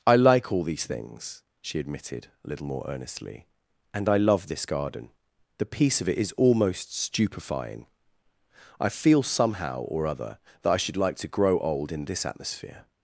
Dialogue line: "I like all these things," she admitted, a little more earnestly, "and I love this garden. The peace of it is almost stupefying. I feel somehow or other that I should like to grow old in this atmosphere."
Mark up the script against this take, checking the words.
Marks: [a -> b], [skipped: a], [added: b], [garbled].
"I like all these things," she admitted, a little more earnestly, "and I love this garden. The peace of it is almost stupefying. I feel somehow or other that I should like to grow old in this atmosphere."